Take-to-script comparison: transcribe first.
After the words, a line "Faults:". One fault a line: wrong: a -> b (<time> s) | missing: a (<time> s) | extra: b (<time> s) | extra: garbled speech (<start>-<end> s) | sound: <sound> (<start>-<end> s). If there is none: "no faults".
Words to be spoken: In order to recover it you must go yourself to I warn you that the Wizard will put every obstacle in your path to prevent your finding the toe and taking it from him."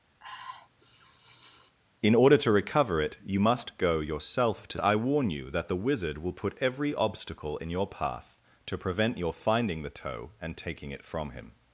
In order to recover it you must go yourself to I warn you that the Wizard will put every obstacle in your path to prevent your finding the toe and taking it from him."
Faults:
sound: sniff (0.2-1.7 s)